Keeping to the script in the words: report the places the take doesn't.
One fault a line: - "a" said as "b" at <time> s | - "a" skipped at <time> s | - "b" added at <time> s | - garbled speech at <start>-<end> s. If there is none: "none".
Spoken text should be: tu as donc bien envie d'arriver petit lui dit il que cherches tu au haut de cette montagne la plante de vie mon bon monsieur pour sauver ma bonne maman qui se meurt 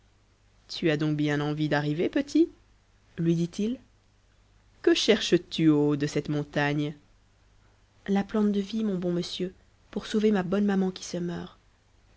none